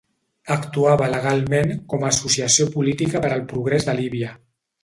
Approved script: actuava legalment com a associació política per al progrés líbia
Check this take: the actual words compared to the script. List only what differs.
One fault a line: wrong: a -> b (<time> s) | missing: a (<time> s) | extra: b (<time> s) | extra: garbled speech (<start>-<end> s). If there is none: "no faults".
extra: de (3.9 s)